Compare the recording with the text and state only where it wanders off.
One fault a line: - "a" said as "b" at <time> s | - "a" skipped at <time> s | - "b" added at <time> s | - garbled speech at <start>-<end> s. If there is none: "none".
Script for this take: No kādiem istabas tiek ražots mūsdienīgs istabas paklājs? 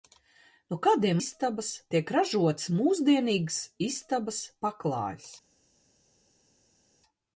none